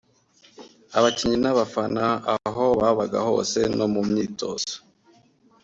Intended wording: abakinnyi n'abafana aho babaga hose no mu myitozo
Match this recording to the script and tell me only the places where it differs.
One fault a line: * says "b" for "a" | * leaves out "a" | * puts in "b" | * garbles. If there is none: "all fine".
all fine